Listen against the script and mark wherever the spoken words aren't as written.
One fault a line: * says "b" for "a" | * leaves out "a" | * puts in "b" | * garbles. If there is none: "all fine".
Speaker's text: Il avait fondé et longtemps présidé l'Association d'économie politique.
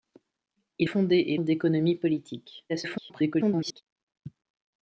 * leaves out "avait"
* leaves out "longtemps présidé l'Association"
* garbles